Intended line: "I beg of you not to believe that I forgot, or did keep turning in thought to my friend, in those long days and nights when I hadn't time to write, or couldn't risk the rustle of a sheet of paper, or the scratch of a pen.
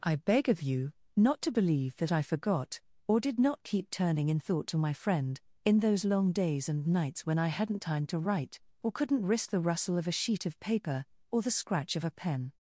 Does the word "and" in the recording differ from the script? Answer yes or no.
no